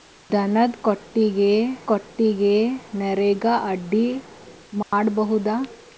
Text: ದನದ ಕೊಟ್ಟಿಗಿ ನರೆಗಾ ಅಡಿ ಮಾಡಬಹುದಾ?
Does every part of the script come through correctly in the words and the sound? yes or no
no